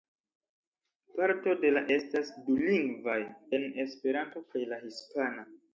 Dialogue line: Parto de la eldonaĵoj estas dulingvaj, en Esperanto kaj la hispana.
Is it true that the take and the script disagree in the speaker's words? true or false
true